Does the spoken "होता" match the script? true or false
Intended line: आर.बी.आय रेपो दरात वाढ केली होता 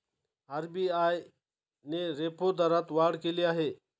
false